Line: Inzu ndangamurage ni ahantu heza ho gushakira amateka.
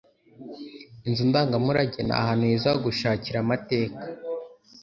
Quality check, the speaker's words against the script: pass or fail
pass